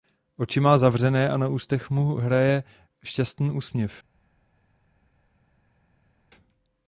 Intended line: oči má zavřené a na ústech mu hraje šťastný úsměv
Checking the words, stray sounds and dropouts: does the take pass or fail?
pass